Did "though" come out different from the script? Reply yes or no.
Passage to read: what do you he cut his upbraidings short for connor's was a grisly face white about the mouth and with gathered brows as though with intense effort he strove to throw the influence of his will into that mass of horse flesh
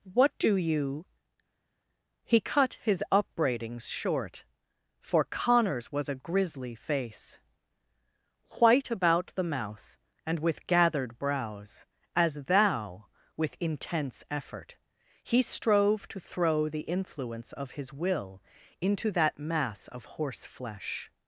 yes